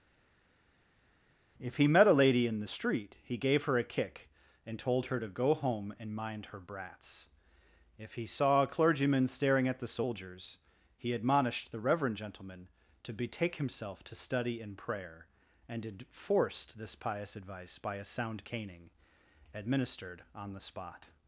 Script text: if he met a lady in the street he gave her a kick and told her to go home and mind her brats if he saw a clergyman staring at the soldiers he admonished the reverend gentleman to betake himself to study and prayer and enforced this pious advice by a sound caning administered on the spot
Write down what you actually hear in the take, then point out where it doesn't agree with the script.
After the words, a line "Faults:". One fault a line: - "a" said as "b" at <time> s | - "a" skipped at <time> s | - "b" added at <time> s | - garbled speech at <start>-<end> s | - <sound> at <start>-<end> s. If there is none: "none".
if he met a lady in the street he gave her a kick and told her to go home and mind her brats if he saw a clergyman staring at the soldiers he admonished the reverend gentleman to betake himself to study and prayer and enforced this pious advice by a sound caning administered on the spot
Faults:
none